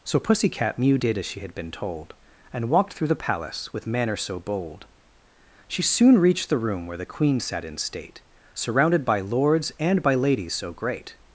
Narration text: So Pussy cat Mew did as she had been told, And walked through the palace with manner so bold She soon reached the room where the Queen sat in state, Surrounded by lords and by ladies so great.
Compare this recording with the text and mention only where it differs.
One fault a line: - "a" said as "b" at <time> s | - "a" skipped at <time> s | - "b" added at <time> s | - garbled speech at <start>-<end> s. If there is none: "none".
none